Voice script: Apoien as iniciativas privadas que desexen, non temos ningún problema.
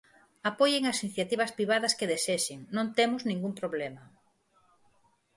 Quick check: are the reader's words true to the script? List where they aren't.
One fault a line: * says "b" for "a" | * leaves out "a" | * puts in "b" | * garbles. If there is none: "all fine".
all fine